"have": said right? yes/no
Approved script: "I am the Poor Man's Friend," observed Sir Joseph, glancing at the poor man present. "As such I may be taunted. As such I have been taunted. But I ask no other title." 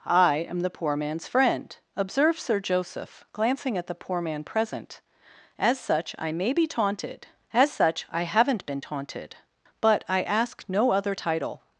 no